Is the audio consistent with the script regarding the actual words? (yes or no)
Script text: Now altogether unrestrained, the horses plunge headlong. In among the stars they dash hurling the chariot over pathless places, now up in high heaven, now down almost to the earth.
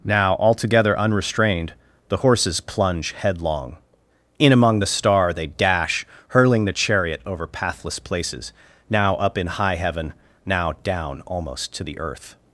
no